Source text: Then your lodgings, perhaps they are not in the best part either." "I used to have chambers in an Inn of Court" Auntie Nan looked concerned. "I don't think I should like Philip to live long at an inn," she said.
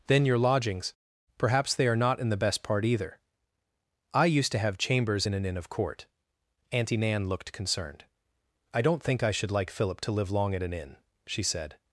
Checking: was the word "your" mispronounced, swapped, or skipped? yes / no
no